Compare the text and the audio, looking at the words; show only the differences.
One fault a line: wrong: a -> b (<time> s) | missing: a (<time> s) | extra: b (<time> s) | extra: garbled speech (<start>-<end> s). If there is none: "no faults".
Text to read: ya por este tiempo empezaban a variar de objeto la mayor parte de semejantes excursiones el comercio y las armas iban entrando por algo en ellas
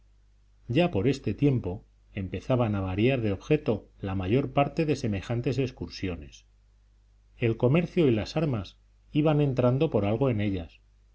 no faults